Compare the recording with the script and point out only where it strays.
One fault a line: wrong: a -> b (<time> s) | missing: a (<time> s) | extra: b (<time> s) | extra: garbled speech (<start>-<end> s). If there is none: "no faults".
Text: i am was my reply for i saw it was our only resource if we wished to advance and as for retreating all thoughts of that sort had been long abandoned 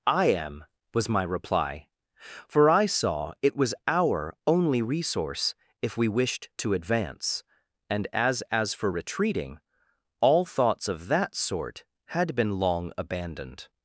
extra: as (8.5 s)